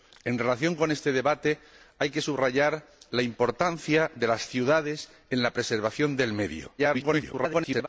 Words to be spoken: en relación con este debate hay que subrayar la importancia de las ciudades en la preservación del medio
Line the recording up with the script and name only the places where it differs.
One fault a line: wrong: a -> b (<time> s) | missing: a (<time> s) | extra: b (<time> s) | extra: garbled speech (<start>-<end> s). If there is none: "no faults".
extra: garbled speech (6.8-7.9 s)